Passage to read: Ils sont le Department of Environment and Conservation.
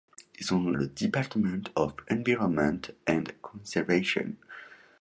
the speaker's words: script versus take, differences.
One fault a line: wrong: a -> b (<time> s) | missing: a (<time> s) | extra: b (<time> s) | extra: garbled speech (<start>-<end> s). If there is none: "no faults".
no faults